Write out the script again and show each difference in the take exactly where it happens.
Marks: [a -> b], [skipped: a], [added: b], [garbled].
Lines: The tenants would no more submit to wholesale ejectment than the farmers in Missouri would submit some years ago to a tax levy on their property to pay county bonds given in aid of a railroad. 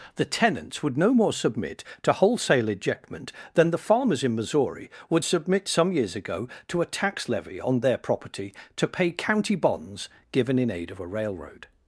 The tenants would no more submit to wholesale ejectment than the farmers in Missouri would submit some years ago to a tax levy on their property to pay county bonds given in aid of a railroad.